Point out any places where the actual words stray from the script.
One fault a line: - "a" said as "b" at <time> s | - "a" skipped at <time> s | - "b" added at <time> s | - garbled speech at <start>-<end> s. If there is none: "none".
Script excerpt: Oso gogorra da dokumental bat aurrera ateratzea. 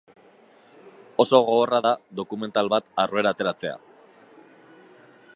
none